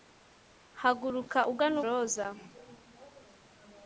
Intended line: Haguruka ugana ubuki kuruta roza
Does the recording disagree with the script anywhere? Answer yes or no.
yes